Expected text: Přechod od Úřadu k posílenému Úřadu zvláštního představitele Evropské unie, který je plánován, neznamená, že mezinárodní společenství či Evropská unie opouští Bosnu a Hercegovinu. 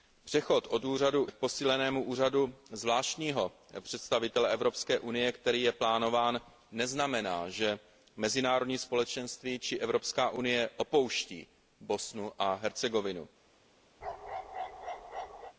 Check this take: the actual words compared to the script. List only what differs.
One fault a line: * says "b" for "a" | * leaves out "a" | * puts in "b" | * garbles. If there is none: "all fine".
all fine